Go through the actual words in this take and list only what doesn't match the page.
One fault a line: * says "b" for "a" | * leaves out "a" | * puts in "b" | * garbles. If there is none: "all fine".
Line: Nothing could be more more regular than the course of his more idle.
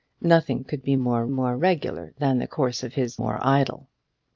all fine